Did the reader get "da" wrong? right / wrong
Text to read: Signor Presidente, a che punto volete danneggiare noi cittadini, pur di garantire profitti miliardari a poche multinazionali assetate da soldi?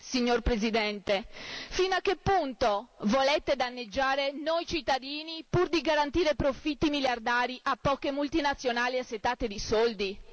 wrong